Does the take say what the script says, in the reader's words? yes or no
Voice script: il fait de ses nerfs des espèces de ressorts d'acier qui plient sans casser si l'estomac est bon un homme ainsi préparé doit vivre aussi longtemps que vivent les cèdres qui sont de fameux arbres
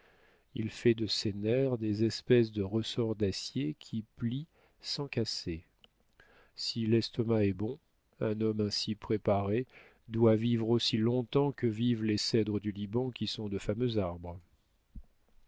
no